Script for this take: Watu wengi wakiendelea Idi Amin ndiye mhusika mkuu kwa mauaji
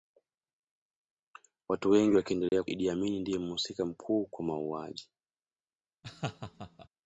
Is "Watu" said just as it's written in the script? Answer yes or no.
yes